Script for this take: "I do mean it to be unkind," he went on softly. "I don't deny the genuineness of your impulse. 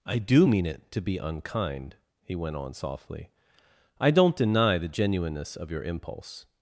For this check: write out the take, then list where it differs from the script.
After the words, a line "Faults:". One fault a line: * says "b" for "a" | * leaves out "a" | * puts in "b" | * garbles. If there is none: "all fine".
"I do mean it to be unkind," he went on softly. "I don't deny the genuineness of your impulse.
Faults:
all fine